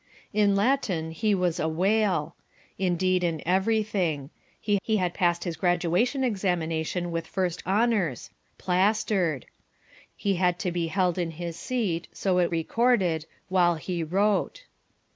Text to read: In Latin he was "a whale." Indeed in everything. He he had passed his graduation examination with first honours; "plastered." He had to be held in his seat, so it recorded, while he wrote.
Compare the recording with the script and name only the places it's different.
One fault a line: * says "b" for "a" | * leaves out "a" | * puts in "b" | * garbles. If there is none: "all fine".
all fine